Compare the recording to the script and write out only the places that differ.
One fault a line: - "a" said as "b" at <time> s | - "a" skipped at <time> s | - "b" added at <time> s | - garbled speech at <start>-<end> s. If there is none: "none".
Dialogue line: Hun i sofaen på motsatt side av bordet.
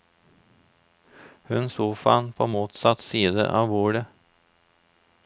none